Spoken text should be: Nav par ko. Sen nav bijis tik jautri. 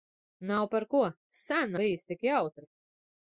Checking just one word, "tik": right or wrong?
right